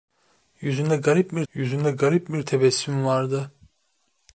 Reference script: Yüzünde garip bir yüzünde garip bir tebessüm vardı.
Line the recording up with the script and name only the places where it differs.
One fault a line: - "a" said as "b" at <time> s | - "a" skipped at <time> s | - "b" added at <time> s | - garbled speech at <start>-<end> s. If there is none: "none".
none